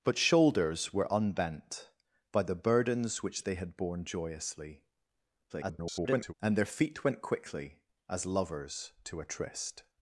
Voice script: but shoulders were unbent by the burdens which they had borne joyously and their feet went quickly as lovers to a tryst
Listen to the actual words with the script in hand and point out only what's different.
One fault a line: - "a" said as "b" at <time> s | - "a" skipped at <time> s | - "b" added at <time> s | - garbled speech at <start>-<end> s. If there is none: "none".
- garbled speech at 5.5-6.3 s